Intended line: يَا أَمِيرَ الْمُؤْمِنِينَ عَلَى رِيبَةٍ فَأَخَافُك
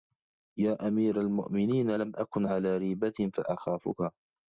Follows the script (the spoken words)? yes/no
no